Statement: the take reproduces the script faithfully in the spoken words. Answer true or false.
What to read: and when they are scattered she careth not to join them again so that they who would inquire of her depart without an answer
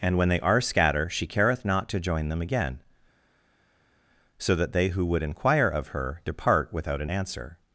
false